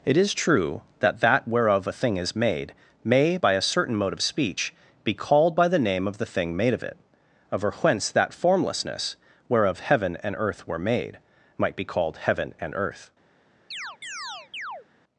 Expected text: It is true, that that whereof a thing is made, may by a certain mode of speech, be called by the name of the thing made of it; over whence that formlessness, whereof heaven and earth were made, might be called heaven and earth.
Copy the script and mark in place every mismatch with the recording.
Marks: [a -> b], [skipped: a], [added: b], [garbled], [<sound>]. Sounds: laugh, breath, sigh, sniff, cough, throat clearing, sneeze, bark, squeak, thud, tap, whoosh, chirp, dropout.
It is true, that that whereof a thing is made, may by a certain mode of speech, be called by the name of the thing made of it; over whence that formlessness, whereof heaven and earth were made, might be called heaven and earth. [chirp]